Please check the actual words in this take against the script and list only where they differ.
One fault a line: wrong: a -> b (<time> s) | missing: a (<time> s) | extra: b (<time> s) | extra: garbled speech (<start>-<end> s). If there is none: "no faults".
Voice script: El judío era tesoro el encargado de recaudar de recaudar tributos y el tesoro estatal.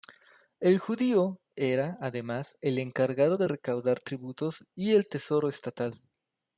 wrong: tesoro -> además (2.0 s)
missing: de recaudar (4.0 s)